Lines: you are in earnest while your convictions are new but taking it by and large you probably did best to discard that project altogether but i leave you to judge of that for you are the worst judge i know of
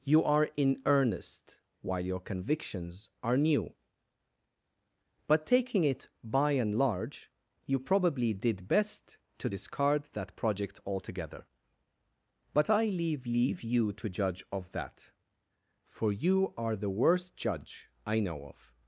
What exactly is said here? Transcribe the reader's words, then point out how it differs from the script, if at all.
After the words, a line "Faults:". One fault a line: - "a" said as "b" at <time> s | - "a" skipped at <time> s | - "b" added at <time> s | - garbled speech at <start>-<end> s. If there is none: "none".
you are in earnest while your convictions are new but taking it by and large you probably did best to discard that project altogether but i leave leave you to judge of that for you are the worst judge i know of
Faults:
- "leave" added at 13.3 s